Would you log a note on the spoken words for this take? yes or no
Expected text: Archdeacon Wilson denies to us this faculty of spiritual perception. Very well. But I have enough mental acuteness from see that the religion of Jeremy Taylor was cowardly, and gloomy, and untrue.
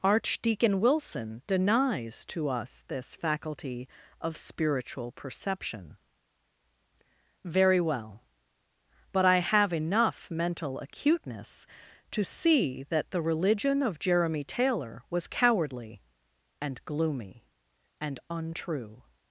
yes